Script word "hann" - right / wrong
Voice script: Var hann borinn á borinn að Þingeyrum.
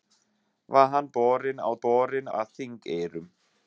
right